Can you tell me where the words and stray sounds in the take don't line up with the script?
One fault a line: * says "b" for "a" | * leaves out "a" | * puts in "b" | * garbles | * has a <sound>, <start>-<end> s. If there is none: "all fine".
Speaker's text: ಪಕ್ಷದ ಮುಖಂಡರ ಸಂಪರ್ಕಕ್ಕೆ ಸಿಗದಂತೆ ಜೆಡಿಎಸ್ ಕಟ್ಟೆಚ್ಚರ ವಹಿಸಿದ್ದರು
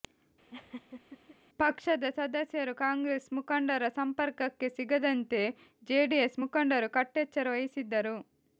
* has a laugh, 0.5-1.4 s
* puts in "ಸದಸ್ಯರು ಕಾಂಗ್ರೆಸ್"
* puts in "ಮುಖಂಡರು"